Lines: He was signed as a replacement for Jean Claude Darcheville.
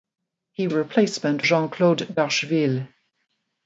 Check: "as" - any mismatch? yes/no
yes